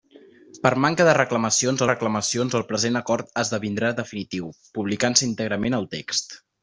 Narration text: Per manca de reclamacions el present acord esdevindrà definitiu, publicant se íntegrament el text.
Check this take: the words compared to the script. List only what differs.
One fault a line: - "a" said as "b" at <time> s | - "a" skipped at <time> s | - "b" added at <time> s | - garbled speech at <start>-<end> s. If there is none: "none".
- "reclamacions" added at 1.9 s